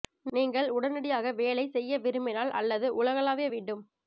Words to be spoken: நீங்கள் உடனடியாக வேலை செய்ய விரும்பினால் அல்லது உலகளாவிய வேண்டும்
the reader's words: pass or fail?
pass